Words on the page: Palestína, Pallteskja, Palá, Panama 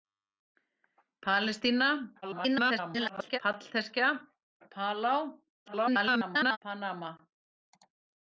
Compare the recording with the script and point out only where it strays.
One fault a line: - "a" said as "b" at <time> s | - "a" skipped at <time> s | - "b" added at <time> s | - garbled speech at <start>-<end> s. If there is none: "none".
- garbled speech at 2.2-3.4 s
- garbled speech at 5.7-6.6 s